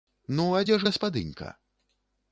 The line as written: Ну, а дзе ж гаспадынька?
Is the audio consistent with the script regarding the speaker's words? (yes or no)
yes